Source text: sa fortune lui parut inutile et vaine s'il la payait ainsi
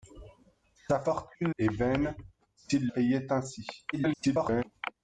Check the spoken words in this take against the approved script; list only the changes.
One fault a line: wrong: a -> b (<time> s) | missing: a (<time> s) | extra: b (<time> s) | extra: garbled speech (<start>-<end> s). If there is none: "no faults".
missing: lui parut inutile (1.5 s)
missing: la (2.9 s)
extra: garbled speech (3.9-4.6 s)